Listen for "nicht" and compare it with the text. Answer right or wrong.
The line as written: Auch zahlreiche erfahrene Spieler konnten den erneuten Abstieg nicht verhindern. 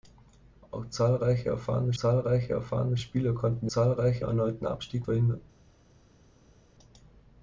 wrong